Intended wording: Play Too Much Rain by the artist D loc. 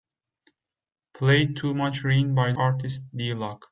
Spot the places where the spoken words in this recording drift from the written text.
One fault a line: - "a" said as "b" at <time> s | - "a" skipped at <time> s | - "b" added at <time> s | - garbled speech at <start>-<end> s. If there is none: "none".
- "the" skipped at 2.5 s